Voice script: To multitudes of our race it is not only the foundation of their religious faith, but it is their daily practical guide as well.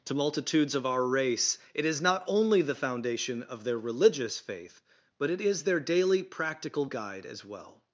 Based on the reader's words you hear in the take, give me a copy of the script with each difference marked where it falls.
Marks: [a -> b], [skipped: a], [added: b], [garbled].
To multitudes of our race it is not only the foundation of their religious faith, but it is their daily practical guide as well.